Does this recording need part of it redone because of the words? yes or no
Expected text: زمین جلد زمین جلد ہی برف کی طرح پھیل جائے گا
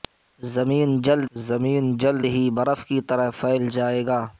no